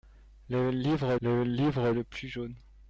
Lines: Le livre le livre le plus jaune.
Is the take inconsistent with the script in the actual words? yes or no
no